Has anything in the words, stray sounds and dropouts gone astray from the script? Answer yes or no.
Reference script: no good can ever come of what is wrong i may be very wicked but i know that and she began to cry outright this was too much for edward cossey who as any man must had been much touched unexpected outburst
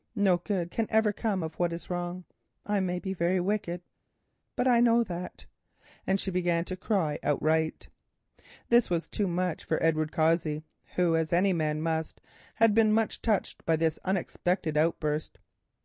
yes